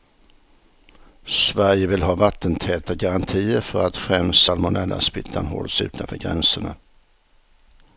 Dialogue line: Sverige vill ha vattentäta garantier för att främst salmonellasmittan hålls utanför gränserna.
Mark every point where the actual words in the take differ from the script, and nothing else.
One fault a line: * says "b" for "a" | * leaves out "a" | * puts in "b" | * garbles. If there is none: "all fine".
all fine